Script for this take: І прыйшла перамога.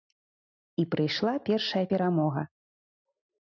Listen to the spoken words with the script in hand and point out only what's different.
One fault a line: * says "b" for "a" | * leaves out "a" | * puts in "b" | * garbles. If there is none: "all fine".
* puts in "першая"